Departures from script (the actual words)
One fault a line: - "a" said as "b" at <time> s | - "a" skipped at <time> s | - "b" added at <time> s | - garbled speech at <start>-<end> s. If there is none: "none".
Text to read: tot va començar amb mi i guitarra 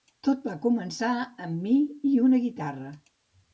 - "una" added at 2.3 s